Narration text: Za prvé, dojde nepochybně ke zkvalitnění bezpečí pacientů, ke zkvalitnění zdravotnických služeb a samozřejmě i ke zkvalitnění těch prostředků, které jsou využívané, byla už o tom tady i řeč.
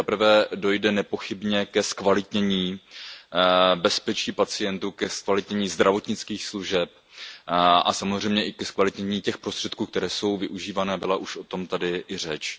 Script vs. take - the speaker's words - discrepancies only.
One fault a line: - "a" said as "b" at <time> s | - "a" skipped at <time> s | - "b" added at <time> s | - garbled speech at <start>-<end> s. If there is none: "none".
none